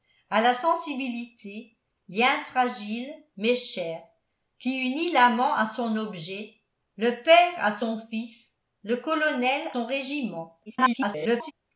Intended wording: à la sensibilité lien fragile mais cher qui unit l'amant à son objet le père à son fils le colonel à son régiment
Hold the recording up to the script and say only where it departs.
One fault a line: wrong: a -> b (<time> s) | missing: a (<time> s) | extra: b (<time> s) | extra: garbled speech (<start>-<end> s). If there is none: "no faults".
missing: à (9.7 s)
extra: garbled speech (10.7-11.5 s)